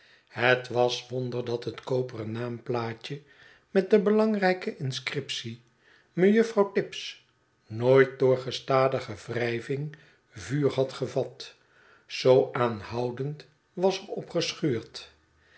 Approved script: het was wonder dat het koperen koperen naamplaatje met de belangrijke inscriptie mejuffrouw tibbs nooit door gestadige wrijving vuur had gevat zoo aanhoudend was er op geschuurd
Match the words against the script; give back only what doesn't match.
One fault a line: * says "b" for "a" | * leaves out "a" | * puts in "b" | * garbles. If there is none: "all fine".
* leaves out "koperen"